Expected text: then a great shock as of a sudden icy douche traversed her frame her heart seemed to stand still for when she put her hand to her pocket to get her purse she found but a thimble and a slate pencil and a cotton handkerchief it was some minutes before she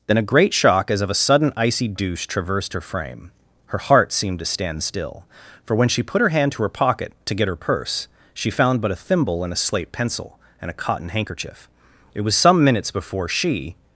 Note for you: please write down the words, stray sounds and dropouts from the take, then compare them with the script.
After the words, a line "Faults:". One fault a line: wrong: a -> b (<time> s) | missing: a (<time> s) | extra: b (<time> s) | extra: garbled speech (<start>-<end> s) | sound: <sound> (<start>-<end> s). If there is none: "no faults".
then a great shock as of a sudden icy douche traversed her frame her heart seemed to stand still for when she put her hand to her pocket to get her purse she found but a thimble and a slate pencil and a cotton handkerchief it was some minutes before she
Faults:
no faults